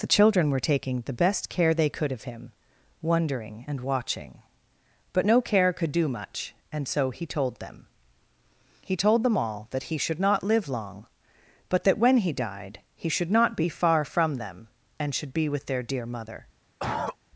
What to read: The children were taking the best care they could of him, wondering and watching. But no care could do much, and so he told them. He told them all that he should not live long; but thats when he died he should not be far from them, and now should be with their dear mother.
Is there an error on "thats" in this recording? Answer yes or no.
yes